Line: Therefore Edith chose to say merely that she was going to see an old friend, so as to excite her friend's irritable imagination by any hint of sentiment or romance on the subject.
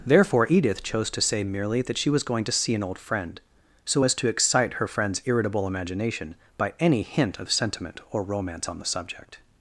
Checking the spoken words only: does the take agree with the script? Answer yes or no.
yes